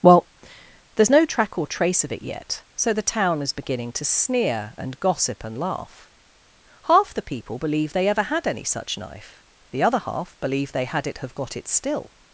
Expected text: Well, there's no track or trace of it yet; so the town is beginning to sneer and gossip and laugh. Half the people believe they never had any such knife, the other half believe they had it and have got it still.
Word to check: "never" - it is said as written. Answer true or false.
false